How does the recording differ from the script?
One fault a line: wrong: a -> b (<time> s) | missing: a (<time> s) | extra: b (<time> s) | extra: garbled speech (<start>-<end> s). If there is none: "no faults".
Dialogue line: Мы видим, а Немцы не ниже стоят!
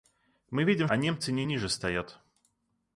no faults